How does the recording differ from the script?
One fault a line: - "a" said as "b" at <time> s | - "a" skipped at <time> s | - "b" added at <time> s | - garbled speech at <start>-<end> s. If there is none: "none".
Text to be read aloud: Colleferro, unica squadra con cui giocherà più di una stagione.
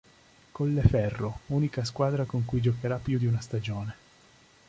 none